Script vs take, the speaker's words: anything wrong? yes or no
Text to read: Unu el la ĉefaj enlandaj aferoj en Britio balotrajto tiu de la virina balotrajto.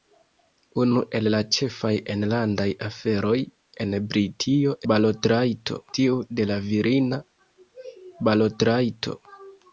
no